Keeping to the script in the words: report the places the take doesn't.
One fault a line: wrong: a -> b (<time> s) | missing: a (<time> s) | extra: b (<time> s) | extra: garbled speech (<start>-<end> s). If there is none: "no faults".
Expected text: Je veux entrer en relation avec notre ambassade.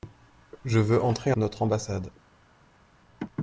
missing: en relation avec (1.3 s)